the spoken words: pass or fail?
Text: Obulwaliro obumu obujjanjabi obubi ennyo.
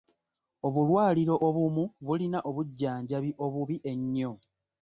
fail